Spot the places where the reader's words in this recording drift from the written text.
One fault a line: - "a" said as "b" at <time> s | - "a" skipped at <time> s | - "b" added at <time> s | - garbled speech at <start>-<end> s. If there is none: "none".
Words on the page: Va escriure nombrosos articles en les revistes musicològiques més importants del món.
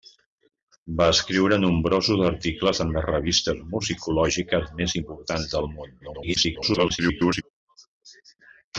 - garbled speech at 6.0-7.4 s